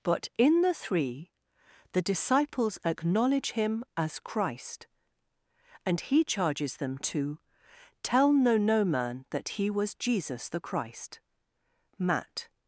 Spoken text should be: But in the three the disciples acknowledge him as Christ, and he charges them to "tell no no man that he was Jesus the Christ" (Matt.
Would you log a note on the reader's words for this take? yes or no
no